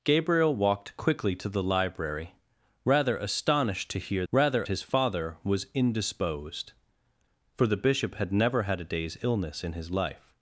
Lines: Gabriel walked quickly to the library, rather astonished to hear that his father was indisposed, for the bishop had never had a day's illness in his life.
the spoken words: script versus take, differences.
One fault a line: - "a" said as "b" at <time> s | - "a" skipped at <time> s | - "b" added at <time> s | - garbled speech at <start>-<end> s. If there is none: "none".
- "that" said as "rather" at 4.3 s